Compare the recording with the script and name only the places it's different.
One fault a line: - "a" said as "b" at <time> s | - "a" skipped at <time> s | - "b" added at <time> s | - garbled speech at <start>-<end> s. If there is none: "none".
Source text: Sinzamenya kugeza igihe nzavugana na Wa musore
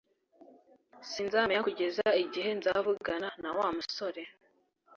none